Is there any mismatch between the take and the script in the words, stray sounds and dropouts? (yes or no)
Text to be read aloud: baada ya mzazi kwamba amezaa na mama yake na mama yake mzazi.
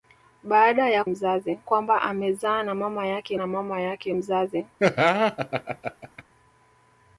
yes